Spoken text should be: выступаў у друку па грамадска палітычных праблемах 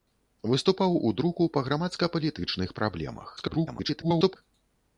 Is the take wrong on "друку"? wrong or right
right